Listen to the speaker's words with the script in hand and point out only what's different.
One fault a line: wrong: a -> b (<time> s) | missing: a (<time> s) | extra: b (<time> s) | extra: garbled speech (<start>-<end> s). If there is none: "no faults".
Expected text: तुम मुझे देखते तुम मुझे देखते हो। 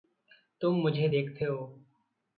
missing: तुम मुझे देखते (1.4 s)